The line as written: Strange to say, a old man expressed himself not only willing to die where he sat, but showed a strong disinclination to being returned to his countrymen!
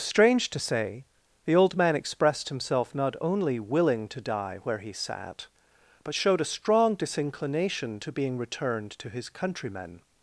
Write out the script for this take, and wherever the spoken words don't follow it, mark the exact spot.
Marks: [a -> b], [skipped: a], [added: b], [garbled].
Strange to say, [a -> the] old man expressed himself not only willing to die where he sat, but showed a strong disinclination to being returned to his countrymen!